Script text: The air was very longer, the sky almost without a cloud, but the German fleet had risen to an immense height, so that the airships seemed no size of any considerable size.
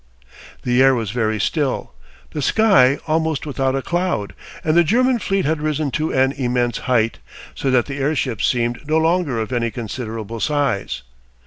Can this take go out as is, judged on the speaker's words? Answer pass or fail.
fail